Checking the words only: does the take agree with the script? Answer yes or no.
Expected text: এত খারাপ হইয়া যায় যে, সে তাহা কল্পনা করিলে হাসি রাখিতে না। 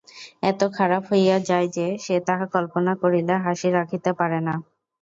no